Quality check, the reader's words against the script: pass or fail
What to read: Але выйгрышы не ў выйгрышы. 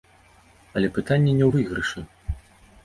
fail